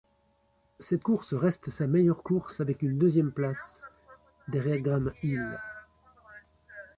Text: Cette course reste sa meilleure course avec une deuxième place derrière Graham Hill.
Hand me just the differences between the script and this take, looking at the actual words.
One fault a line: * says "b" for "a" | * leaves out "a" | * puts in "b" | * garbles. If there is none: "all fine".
all fine